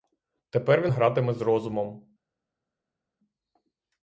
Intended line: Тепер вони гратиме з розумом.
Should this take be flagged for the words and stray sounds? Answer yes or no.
yes